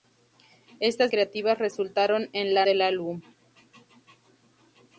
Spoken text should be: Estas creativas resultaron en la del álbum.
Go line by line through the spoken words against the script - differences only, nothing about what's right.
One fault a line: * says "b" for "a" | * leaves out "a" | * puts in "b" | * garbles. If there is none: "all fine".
all fine